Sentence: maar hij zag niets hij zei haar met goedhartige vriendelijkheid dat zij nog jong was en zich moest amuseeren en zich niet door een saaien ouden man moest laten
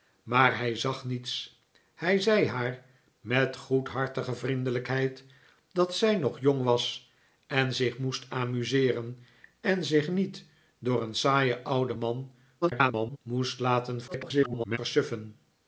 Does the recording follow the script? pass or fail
fail